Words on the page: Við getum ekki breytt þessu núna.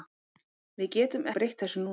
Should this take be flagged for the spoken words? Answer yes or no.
yes